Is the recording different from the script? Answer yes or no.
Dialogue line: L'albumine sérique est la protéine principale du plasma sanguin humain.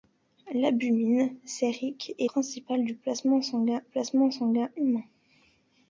yes